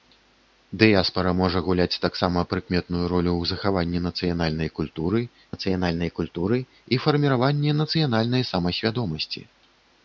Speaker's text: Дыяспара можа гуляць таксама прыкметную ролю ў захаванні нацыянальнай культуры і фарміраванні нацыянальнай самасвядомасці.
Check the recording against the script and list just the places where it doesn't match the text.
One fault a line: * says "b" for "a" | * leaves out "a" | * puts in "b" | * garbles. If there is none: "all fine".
* puts in "нацыянальнай культуры"